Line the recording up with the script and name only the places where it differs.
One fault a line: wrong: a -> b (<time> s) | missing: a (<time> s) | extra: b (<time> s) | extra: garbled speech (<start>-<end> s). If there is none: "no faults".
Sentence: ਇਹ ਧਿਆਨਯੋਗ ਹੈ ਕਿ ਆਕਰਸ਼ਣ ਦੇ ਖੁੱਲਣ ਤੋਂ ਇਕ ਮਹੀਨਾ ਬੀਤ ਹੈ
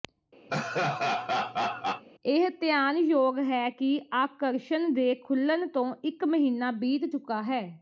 extra: ਚੁੱਕਾ (7.1 s)